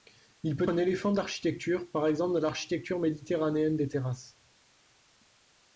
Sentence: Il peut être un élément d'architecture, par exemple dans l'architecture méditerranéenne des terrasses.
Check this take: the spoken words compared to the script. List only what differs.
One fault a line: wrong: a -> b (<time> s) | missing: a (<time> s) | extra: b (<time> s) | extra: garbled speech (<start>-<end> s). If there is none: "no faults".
missing: être (0.7 s)